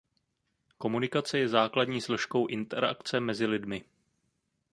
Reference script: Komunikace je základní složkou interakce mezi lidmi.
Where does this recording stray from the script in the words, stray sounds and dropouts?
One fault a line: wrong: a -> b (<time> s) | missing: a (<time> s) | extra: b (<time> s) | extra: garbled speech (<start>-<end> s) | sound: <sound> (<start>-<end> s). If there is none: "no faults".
no faults